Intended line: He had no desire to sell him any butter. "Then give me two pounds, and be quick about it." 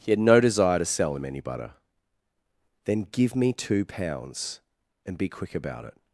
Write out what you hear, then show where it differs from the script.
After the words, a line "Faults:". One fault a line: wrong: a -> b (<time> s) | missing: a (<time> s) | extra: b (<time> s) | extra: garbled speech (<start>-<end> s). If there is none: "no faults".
He had no desire to sell him any butter. "Then give me two pounds, and be quick about it."
Faults:
no faults